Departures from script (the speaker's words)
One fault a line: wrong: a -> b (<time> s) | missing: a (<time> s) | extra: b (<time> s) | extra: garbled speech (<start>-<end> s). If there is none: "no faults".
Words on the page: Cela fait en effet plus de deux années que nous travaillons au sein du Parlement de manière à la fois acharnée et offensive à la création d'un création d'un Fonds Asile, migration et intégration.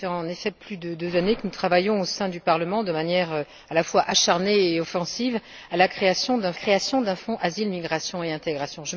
no faults